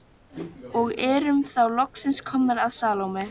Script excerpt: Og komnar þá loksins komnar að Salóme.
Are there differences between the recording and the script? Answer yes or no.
yes